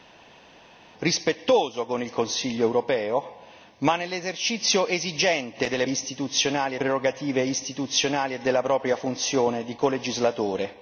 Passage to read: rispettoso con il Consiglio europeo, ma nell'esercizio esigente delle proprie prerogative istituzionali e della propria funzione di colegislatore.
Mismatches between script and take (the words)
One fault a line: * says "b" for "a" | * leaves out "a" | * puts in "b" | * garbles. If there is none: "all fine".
* says "istituzionali" for "proprie"